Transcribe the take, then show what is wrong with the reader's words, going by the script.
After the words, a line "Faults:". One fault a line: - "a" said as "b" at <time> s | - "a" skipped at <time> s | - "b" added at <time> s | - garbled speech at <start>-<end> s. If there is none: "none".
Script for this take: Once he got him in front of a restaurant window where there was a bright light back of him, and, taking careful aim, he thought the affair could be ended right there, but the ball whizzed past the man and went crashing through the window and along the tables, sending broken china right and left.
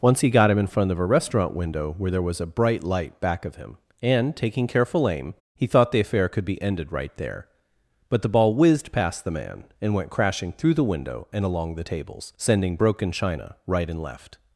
Once he got him in front of a restaurant window where there was a bright light back of him, and, taking careful aim, he thought the affair could be ended right there, but the ball whizzed past the man and went crashing through the window and along the tables, sending broken china right and left.
Faults:
none